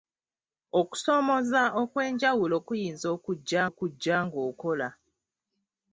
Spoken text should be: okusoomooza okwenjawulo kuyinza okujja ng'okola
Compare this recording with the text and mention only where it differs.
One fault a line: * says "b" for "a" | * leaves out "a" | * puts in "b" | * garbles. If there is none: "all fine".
* puts in "okujja"